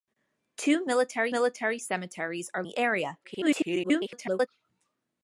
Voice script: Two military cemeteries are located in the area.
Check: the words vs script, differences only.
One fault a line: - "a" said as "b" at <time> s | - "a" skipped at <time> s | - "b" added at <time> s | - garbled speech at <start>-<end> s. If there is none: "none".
- "military" added at 1.3 s
- "located in" skipped at 2.6 s
- garbled speech at 3.2-4.5 s